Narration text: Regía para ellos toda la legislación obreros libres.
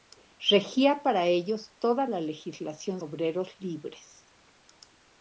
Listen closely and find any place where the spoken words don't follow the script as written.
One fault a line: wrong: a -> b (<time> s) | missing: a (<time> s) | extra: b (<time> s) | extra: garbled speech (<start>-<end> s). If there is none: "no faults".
no faults